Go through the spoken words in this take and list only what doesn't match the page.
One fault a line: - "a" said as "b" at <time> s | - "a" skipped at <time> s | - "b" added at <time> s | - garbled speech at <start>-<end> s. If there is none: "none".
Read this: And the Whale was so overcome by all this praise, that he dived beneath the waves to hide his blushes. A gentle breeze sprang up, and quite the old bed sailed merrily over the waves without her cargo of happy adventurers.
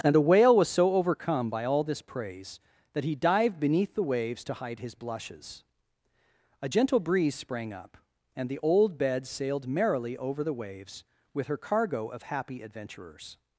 - "quite" skipped at 8.5 s
- "without" said as "with" at 11.3 s